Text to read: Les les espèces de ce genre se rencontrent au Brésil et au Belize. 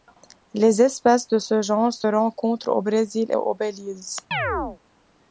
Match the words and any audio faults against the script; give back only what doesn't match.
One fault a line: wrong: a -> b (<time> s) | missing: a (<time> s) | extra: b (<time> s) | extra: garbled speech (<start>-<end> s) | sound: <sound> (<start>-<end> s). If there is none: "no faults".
missing: les (0.8 s)
sound: chirp (4.3-4.8 s)